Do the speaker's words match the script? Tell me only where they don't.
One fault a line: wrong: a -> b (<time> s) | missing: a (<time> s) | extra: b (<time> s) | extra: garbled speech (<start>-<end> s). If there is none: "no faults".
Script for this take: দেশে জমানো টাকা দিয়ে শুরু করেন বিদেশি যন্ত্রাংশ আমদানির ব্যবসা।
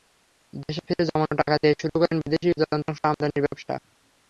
extra: ফিরে (0.9 s)